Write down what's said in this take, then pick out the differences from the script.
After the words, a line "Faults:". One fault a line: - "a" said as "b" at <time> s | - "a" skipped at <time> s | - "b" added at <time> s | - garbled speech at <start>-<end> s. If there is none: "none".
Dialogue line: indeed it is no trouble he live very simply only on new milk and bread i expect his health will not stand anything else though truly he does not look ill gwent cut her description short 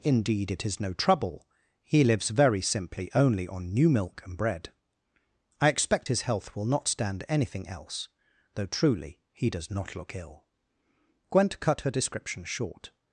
indeed it is no trouble he lives very simply only on new milk and bread i expect his health will not stand anything else though truly he does not look ill gwent cut her description short
Faults:
- "live" said as "lives" at 2.0 s